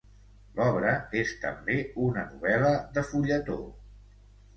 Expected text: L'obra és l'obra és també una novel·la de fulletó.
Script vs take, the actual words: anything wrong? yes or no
yes